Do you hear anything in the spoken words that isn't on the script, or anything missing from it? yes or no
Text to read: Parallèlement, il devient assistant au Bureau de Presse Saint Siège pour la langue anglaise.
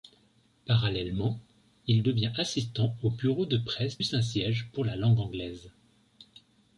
no